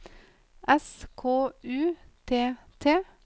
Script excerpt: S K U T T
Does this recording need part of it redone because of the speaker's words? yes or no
no